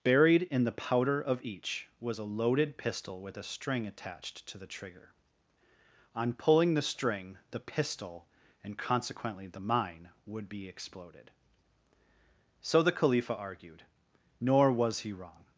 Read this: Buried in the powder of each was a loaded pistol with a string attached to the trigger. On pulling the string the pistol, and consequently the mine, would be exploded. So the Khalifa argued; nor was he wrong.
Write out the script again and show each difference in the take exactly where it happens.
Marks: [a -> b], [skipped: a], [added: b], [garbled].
Buried in the powder of each was a loaded pistol with a string attached to the trigger. On pulling the string the pistol, and consequently the mine, would be exploded. So the Khalifa argued; nor was he wrong.